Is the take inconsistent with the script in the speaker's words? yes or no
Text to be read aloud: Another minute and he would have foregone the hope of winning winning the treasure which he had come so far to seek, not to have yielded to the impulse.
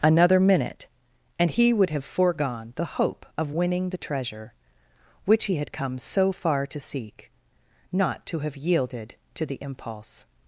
yes